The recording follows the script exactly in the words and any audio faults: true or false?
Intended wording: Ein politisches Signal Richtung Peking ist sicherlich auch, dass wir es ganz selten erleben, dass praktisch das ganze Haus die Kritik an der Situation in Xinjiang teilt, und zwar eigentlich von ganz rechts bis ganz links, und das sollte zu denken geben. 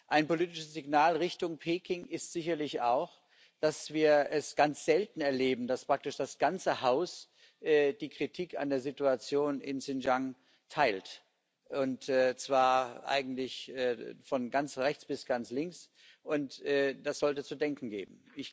true